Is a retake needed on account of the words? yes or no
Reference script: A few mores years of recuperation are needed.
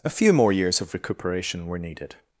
yes